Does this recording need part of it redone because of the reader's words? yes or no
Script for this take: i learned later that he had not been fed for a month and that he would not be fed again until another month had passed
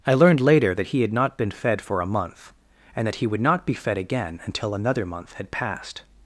no